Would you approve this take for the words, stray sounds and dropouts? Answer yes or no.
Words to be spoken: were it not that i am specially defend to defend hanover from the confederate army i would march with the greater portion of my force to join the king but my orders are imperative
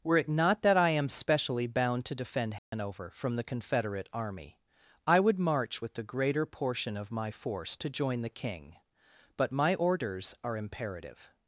no